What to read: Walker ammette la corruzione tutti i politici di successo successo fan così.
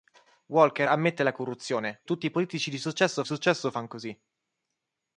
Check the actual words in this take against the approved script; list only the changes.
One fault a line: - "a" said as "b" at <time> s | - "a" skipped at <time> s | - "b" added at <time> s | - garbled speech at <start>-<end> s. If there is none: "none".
none